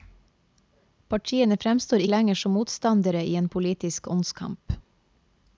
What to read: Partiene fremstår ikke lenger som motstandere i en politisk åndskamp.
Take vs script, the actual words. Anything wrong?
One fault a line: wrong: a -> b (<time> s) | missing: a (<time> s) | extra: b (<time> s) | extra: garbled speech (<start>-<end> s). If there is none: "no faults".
missing: ikke (2.0 s)